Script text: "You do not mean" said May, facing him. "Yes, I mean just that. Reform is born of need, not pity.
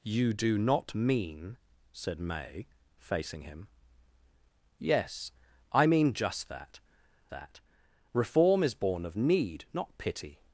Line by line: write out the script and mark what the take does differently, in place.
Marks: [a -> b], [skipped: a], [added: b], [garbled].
"You do not mean" said May, facing him. "Yes, I mean just that. [added: that] Reform is born of need, not pity.